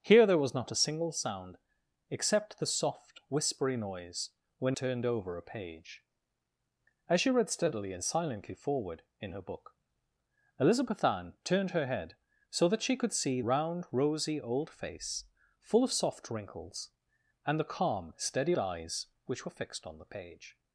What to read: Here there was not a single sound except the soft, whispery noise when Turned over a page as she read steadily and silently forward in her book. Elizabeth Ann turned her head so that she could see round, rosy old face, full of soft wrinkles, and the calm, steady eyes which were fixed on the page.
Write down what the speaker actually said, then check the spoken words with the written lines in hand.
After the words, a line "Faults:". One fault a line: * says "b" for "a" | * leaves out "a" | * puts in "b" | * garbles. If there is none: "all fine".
Here there was not a single sound except the soft, whispery noise when Turned over a page as she read steadily and silently forward in her book. Elizabeth Ann turned her head so that she could see round, rosy old face, full of soft wrinkles, and the calm, steady eyes which were fixed on the page.
Faults:
all fine